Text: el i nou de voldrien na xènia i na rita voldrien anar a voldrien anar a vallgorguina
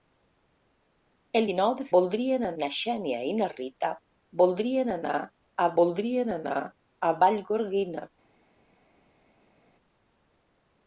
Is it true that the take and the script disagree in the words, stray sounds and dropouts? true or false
false